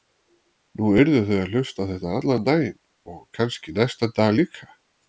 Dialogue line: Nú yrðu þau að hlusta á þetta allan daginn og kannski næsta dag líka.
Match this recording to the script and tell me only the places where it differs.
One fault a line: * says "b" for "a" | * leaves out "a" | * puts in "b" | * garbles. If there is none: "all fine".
all fine